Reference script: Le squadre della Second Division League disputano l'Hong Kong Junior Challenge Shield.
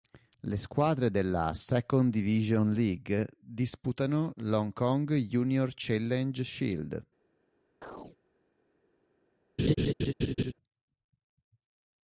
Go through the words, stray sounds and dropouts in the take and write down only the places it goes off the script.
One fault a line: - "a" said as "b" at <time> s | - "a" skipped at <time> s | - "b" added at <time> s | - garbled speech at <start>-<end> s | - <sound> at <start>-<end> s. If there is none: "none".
- chirp at 7.8-8.2 s
- laugh at 9.6-10.5 s